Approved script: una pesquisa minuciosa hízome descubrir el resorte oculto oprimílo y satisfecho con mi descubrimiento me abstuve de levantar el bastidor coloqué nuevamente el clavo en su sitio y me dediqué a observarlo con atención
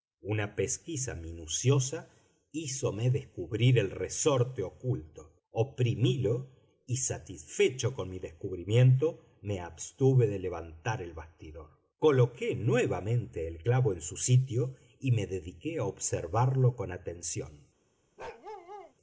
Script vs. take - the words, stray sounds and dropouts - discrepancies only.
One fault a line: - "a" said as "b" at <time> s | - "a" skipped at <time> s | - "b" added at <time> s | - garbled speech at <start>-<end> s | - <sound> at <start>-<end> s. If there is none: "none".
- bark at 18.2-18.9 s